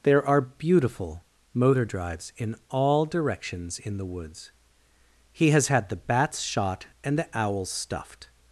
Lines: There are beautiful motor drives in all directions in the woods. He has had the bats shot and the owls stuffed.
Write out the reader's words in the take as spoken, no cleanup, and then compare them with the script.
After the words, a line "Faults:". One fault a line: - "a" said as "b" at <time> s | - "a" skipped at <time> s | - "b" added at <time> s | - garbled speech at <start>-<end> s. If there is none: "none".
There are beautiful motor drives in all directions in the woods. He has had the bats shot and the owls stuffed.
Faults:
none